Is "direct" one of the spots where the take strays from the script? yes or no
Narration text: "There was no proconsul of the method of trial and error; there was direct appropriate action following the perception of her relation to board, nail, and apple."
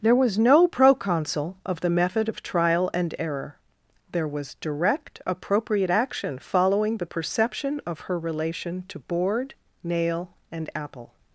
no